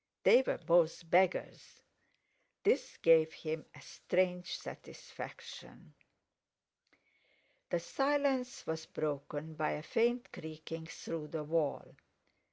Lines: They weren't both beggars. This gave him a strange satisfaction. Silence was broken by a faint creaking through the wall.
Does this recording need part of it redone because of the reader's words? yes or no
yes